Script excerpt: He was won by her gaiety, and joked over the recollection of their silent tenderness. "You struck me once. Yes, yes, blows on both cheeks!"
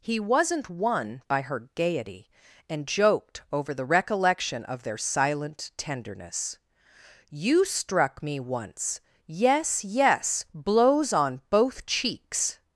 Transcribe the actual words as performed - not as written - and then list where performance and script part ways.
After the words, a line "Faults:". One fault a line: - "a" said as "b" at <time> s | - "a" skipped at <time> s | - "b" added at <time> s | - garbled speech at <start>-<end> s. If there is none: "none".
He wasn't won by her gaiety, and joked over the recollection of their silent tenderness. "You struck me once. Yes, yes, blows on both cheeks!"
Faults:
- "was" said as "wasn't" at 0.2 s